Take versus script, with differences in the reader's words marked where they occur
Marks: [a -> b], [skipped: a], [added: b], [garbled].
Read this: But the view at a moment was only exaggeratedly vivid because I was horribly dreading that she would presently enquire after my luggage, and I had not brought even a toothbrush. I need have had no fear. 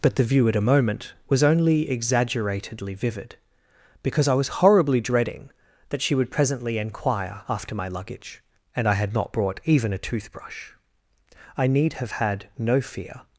But the view at a moment was only exaggeratedly vivid because I was horribly dreading that she would presently enquire after my luggage, and I had not brought even a toothbrush. I need have had no fear.